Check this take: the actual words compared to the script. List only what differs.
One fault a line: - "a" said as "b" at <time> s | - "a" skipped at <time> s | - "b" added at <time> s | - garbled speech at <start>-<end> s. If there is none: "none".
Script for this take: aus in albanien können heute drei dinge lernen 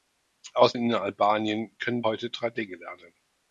none